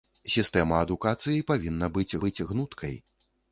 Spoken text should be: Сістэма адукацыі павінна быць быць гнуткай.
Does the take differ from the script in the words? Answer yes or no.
no